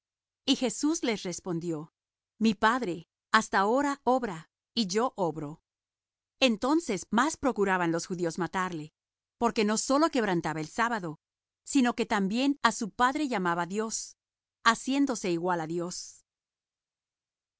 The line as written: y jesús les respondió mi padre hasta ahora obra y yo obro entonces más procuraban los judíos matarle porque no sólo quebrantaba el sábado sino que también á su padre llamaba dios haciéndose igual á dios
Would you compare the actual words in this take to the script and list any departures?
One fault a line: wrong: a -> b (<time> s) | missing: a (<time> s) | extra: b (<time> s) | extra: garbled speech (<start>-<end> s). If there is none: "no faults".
no faults